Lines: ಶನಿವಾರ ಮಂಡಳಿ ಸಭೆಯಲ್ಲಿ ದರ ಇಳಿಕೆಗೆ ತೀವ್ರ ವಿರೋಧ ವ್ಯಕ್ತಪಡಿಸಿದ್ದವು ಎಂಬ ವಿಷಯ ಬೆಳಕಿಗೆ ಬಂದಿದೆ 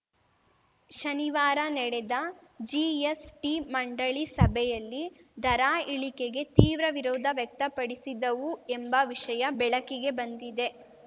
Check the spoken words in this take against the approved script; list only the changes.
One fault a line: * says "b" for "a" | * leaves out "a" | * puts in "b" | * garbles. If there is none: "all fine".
* puts in "ನಡೆದ ಜಿಎಸ್‌ಟಿ"